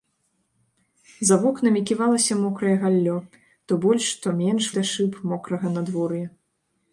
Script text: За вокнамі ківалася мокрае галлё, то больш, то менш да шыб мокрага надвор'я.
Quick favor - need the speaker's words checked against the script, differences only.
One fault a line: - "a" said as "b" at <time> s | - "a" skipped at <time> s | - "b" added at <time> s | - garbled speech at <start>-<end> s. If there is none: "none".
none